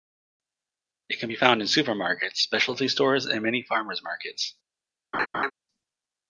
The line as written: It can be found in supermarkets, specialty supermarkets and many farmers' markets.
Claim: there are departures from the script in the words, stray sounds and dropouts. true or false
true